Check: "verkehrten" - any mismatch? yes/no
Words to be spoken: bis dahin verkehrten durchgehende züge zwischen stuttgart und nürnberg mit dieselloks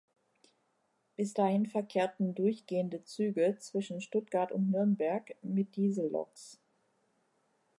no